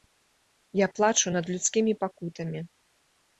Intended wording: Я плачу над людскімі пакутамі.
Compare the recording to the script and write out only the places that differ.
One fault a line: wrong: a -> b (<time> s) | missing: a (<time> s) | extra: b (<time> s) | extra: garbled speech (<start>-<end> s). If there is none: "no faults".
no faults